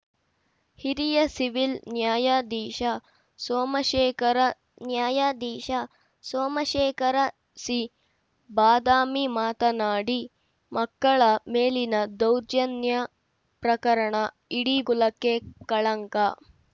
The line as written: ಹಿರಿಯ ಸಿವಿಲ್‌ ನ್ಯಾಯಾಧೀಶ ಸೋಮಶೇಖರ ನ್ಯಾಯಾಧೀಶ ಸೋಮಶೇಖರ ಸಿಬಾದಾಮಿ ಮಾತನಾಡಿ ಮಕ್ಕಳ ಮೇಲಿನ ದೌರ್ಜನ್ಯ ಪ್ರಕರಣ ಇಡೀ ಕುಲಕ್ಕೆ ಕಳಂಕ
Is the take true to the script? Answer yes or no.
yes